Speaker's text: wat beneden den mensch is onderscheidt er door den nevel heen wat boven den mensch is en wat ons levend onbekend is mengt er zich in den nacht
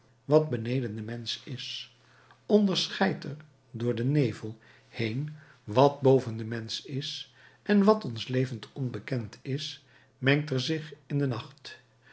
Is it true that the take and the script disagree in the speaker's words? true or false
false